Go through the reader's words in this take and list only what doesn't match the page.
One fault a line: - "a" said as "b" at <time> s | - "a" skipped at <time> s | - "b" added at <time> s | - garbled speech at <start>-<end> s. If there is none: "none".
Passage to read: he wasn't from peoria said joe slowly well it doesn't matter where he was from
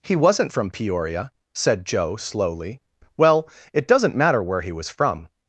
none